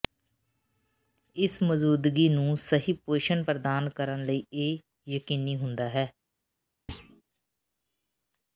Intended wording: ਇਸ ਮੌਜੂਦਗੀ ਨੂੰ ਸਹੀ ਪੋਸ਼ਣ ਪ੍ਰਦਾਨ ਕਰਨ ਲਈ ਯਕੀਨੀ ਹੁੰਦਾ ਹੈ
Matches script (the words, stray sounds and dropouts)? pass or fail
fail